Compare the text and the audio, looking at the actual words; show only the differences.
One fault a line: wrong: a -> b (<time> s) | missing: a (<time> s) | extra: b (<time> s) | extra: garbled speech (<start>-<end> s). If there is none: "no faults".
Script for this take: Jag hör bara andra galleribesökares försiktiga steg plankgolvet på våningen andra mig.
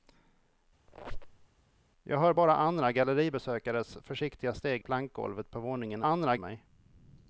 no faults